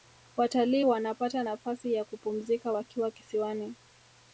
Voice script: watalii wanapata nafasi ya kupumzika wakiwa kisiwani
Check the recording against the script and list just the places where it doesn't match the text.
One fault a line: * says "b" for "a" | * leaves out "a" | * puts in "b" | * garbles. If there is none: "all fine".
all fine